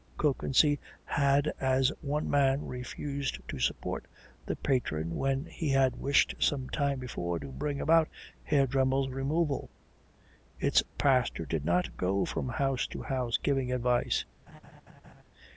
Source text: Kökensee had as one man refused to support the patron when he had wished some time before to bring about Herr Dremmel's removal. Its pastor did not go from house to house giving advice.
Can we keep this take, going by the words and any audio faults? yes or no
no